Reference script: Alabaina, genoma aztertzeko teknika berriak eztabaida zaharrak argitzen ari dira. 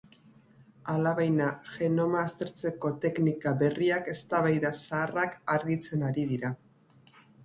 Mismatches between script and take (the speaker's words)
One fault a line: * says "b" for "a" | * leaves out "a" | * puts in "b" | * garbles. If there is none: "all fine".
all fine